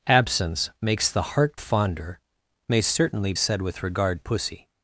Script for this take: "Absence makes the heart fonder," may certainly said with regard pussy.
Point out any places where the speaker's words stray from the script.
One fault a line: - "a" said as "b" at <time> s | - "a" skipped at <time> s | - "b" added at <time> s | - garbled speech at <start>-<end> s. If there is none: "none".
none